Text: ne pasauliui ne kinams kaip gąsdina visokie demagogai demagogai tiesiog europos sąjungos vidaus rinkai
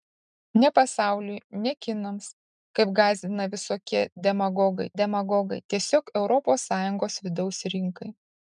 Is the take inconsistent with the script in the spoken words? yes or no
no